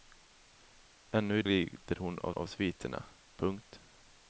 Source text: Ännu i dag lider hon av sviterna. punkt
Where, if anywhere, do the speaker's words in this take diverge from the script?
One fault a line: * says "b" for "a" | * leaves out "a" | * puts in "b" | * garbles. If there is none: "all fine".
* leaves out "dag"
* puts in "av"